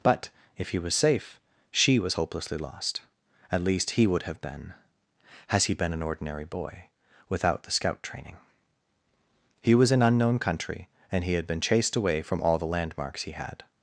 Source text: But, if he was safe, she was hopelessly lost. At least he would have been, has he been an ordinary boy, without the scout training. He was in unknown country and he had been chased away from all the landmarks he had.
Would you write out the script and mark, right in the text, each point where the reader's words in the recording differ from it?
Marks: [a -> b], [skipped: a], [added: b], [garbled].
But, if he was safe, she was hopelessly lost. At least he would have been, has he been an ordinary boy, without the scout training. He was in unknown country and he had been chased away from all the landmarks he had.